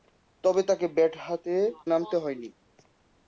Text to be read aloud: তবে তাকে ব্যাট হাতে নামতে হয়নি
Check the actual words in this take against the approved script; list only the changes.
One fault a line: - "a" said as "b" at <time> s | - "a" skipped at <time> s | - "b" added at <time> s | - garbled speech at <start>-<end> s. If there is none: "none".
none